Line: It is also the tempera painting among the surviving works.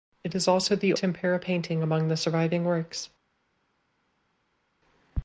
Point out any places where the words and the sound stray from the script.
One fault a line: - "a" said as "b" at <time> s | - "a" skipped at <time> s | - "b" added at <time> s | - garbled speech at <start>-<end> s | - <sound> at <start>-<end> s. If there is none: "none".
none